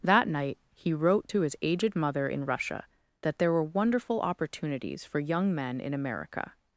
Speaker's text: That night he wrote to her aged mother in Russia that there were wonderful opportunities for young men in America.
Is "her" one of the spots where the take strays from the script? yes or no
yes